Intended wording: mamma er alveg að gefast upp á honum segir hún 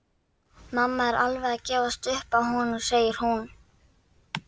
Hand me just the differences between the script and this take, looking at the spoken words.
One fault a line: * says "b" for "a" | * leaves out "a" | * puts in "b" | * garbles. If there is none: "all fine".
all fine